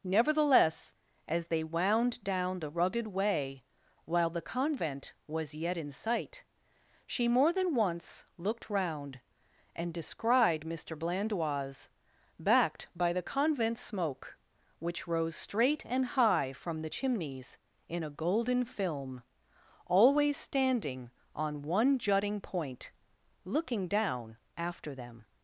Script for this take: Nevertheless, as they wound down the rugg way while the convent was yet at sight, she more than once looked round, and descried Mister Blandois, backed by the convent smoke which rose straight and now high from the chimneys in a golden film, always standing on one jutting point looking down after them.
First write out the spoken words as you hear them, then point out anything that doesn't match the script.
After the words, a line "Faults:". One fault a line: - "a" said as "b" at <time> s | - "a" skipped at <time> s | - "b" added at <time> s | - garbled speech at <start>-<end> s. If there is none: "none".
Nevertheless, as they wound down the rugged way while the convent was yet in sight, she more than once looked round, and descried Mister Blandois, backed by the convent smoke which rose straight and high from the chimneys in a golden film, always standing on one jutting point looking down after them.
Faults:
- "rugg" said as "rugged" at 2.7 s
- "at" said as "in" at 5.8 s
- "now" skipped at 16.2 s